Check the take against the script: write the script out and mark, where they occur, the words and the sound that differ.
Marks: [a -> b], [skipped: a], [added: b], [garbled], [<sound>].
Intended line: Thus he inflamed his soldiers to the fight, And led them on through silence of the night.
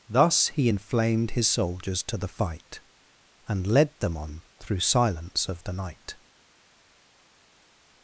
Thus he inflamed his soldiers to the fight, And led them on through silence of the night.